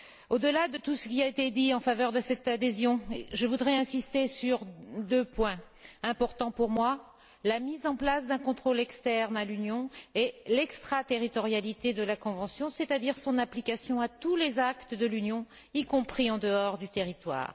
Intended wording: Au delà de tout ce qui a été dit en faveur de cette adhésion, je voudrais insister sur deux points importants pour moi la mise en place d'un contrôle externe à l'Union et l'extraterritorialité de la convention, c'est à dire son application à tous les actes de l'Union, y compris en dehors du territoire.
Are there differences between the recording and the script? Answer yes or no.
no